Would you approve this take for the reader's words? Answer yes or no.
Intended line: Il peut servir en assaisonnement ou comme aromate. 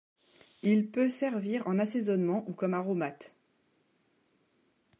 yes